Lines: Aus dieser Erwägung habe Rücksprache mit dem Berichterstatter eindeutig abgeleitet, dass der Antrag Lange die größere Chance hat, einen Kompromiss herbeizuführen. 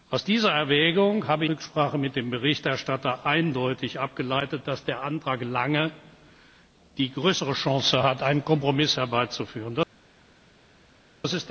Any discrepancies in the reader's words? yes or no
no